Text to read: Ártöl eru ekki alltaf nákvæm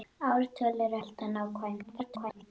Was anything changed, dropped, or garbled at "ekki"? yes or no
yes